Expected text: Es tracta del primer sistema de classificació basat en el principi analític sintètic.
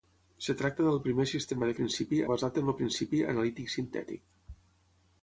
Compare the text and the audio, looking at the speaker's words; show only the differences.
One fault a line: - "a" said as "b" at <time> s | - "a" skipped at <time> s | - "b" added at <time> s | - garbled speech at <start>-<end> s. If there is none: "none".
- "classificació" said as "principi" at 1.8 s